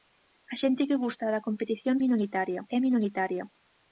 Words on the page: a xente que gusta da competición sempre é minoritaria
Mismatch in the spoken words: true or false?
true